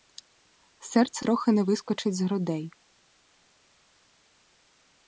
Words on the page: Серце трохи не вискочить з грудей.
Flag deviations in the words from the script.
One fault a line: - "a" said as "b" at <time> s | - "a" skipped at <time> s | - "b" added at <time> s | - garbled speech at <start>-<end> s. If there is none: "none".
none